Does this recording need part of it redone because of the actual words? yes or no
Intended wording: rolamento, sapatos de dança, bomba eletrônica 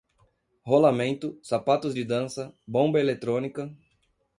no